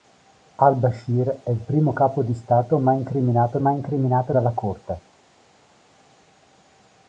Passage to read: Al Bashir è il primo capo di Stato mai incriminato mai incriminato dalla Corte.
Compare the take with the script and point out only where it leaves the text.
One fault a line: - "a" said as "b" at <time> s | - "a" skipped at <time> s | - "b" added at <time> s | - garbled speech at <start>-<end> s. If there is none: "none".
none